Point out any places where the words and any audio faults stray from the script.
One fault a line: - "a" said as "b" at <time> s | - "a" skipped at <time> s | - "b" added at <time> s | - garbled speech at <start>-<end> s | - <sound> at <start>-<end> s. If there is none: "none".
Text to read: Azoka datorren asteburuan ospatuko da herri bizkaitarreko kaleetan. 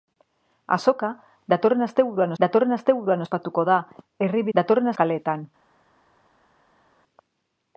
- "datorren asteburuan" added at 2.4 s
- "bizkaitarreko" said as "datorren" at 4.6 s